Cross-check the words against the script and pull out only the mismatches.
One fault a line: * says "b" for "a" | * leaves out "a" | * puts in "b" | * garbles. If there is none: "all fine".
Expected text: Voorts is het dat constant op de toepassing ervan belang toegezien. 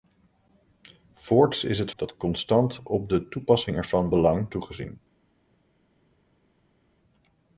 all fine